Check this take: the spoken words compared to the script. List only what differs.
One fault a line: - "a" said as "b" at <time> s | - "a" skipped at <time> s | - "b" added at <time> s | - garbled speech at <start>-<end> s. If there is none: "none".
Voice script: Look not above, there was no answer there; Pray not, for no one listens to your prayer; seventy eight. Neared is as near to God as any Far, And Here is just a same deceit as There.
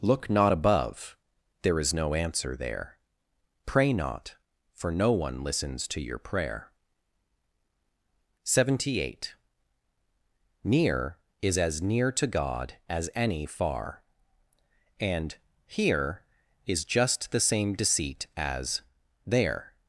- "was" said as "is" at 1.8 s
- "Neared" said as "Near" at 10.6 s
- "a" said as "the" at 17.3 s